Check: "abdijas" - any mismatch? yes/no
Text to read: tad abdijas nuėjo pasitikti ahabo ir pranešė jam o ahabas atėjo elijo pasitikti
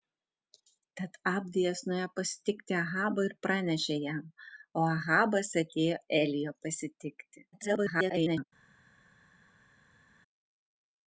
no